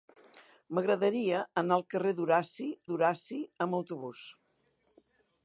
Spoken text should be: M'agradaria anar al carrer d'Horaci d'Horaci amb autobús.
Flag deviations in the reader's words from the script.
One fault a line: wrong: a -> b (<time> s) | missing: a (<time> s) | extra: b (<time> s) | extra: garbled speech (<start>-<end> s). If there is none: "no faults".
no faults